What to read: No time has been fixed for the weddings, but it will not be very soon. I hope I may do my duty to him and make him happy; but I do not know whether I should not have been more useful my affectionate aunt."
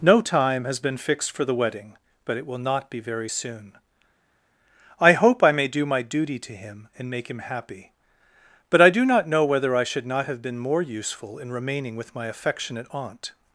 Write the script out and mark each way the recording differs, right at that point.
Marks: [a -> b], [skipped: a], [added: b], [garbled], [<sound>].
No time has been fixed for the [weddings, -> wedding] but it will not be very soon. I hope I may do my duty to him and make him happy; but I do not know whether I should not have been more useful [added: in remaining with] my affectionate aunt."